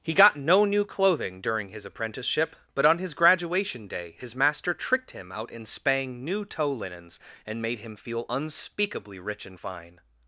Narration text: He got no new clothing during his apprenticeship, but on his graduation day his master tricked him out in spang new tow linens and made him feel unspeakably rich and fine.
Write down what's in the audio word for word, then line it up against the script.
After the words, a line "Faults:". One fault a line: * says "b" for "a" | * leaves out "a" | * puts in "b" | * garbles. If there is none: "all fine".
He got no new clothing during his apprenticeship, but on his graduation day his master tricked him out in spang new tow linens and made him feel unspeakably rich and fine.
Faults:
all fine